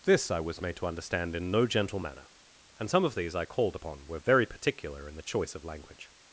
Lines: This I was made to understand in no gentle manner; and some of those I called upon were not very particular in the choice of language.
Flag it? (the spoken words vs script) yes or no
yes